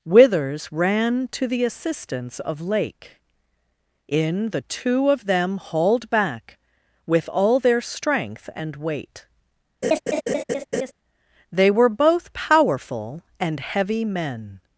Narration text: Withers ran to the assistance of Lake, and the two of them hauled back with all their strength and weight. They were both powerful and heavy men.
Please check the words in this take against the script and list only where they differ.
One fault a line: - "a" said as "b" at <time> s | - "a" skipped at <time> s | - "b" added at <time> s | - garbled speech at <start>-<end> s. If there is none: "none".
- "and" said as "in" at 4.1 s